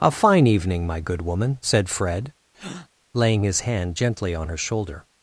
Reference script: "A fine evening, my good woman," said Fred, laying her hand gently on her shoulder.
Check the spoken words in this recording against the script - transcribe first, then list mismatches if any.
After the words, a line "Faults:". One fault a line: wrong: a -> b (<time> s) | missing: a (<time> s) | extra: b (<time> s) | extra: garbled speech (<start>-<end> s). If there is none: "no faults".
"A fine evening, my good woman," said Fred, laying his hand gently on her shoulder.
Faults:
wrong: her -> his (3.4 s)